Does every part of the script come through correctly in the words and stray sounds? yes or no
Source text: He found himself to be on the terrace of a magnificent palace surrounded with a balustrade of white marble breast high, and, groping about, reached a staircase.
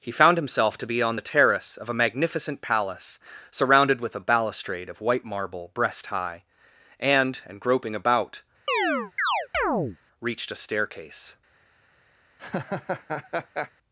no